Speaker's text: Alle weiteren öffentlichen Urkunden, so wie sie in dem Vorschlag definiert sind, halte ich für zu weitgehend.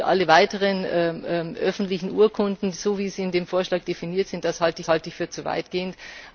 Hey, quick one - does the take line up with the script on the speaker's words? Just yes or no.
no